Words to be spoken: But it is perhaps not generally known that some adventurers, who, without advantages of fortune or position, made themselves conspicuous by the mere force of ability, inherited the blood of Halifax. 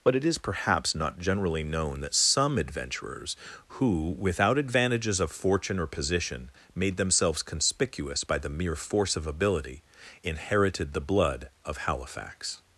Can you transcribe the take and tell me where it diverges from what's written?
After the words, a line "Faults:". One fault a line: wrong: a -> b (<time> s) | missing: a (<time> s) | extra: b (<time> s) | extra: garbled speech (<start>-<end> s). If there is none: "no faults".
But it is perhaps not generally known that some adventurers, who, without advantages of fortune or position, made themselves conspicuous by the mere force of ability, inherited the blood of Halifax.
Faults:
no faults